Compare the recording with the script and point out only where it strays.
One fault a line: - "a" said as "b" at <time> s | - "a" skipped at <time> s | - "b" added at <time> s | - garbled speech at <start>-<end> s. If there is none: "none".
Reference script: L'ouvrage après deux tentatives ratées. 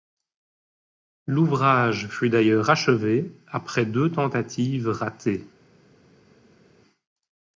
- "fut d'ailleurs achevé" added at 2.1 s